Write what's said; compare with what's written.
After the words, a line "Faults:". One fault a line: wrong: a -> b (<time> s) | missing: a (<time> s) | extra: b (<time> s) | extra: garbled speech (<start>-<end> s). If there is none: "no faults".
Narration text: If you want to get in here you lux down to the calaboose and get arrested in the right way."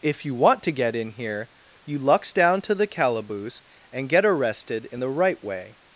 If you want to get in here you lux down to the calaboose and get arrested in the right way."
Faults:
no faults